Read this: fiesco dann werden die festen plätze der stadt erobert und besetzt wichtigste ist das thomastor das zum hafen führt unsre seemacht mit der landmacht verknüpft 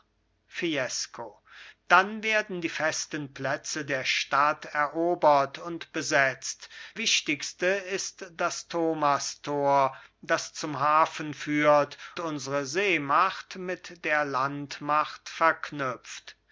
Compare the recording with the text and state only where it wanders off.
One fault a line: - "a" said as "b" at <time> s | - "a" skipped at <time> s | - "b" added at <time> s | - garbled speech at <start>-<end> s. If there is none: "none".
none